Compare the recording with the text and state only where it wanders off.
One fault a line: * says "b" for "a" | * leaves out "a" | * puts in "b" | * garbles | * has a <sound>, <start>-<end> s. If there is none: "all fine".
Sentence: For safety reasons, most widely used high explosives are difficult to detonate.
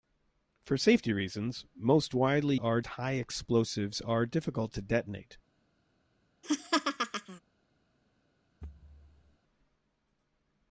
* says "are" for "used"
* has a laugh, 6.4-7.4 s
* has a thud, 8.6-9.4 s